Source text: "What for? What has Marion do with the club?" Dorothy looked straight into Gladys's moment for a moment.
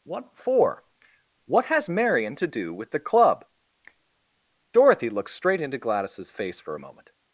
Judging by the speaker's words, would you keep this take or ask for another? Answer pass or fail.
fail